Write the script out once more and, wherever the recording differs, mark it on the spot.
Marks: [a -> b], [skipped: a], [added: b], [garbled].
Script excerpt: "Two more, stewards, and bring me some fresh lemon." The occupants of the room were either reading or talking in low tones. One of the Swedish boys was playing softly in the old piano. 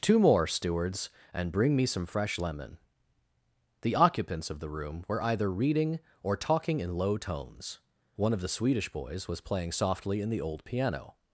"Two more, stewards, and bring me some fresh lemon." The occupants of the room were either reading or talking in low tones. One of the Swedish boys was playing softly in the old piano.